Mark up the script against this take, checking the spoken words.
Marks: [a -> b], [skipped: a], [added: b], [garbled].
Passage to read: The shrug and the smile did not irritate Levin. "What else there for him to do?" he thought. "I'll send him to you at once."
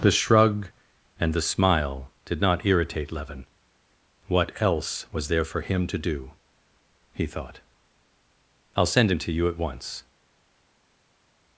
The shrug and the smile did not irritate Levin. "What else [added: was] there for him to do?" he thought. "I'll send him to you at once."